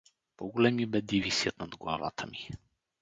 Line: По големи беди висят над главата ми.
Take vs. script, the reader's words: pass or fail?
pass